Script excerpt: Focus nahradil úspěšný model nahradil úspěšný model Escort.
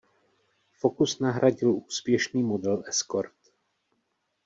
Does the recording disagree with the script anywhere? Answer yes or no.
yes